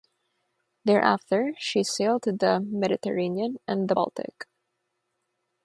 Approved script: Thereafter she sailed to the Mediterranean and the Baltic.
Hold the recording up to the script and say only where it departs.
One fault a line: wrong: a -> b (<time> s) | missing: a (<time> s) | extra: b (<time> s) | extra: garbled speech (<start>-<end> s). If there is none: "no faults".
no faults